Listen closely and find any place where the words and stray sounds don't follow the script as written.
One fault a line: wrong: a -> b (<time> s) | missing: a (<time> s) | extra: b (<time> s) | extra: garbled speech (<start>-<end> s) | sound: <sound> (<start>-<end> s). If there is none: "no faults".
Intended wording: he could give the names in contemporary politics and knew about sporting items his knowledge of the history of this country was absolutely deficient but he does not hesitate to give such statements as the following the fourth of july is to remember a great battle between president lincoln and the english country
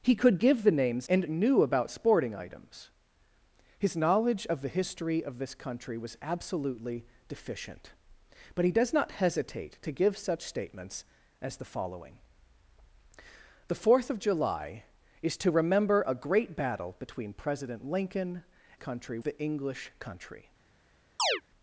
missing: in contemporary politics (1.1 s)
wrong: and -> country (18.7 s)
sound: chirp (21.2-21.4 s)